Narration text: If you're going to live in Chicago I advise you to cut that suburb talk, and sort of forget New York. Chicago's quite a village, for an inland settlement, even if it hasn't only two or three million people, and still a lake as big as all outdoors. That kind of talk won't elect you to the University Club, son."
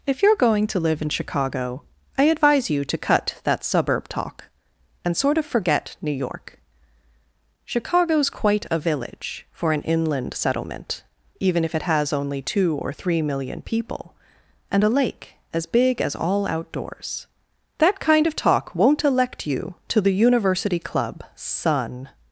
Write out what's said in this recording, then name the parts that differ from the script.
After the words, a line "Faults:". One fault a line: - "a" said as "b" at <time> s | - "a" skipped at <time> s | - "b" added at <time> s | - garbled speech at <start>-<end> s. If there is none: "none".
If you're going to live in Chicago I advise you to cut that suburb talk, and sort of forget New York. Chicago's quite a village, for an inland settlement, even if it has only two or three million people, and a lake as big as all outdoors. That kind of talk won't elect you to the University Club, son."
Faults:
- "hasn't" said as "has" at 11.8 s
- "still" skipped at 14.8 s